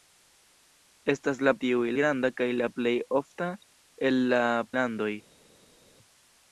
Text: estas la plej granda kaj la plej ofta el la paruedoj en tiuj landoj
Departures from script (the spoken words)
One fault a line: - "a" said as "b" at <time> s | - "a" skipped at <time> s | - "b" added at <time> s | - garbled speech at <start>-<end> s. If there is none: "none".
- "plej" said as "tiuj" at 1.7 s
- "paruedoj en tiuj" skipped at 4.4 s